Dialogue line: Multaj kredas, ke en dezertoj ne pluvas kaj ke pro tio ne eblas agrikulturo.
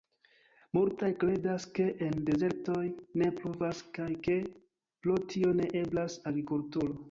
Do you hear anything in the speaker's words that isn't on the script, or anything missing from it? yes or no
no